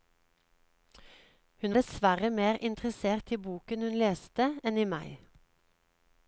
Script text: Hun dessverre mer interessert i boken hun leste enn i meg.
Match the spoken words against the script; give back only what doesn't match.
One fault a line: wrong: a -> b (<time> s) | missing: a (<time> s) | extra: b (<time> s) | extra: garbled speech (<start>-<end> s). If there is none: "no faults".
no faults